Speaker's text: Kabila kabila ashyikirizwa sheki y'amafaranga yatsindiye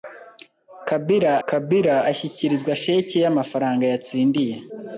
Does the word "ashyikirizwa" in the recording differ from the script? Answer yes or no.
no